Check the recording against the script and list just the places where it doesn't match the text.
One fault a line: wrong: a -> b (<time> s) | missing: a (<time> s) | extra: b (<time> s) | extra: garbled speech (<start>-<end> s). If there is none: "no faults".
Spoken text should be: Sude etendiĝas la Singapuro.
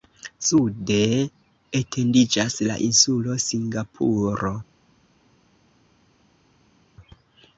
extra: insulo (2.9 s)